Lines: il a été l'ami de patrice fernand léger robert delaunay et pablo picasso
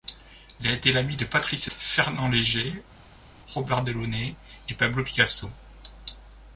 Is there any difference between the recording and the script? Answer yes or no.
no